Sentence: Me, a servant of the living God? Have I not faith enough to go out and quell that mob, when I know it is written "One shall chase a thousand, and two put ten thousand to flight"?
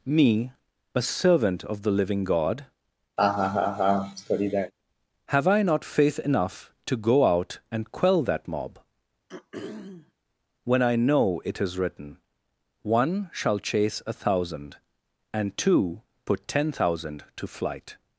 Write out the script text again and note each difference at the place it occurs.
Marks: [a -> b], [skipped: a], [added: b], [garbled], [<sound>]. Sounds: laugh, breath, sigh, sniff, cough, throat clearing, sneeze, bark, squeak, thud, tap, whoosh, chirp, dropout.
Me, a servant of the living God? [laugh] Have I not faith enough to go out and quell that mob, [throat clearing] when I know it is written "One shall chase a thousand, and two put ten thousand to flight"?